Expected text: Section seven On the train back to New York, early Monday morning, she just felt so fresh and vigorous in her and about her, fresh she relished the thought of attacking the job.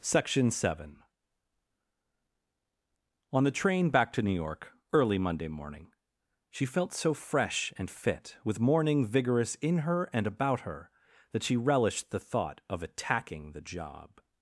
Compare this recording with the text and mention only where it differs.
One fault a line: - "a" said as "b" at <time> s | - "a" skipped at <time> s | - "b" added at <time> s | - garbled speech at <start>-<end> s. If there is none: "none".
- "just" skipped at 6.7 s
- "fit with morning" added at 7.9 s
- "fresh" said as "that" at 11.3 s